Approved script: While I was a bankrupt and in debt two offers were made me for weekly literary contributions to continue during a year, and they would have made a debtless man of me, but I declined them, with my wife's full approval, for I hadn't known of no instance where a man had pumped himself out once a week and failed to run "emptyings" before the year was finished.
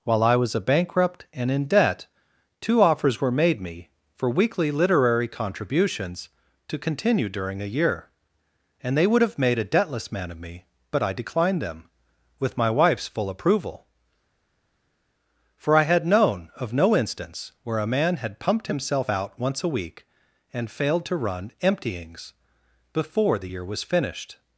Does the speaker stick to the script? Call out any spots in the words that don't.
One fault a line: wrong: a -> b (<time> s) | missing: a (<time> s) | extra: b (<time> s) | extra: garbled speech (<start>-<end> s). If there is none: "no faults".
wrong: hadn't -> had (15.8 s)